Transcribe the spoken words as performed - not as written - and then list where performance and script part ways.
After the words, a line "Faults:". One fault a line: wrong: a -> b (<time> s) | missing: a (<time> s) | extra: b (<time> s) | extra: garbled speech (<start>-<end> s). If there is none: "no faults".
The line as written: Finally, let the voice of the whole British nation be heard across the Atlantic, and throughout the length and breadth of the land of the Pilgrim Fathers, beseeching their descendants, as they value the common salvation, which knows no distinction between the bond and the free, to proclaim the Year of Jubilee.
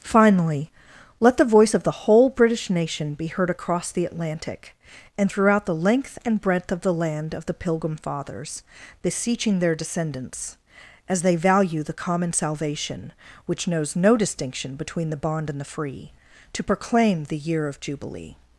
Finally, let the voice of the whole British nation be heard across the Atlantic, and throughout the length and breadth of the land of the Pilgrim Fathers, beseeching their descendants, as they value the common salvation, which knows no distinction between the bond and the free, to proclaim the Year of Jubilee.
Faults:
no faults